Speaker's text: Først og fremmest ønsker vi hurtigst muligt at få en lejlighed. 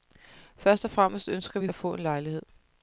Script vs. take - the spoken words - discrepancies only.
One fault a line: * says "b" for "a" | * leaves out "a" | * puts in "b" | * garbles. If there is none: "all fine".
* leaves out "hurtigst muligt"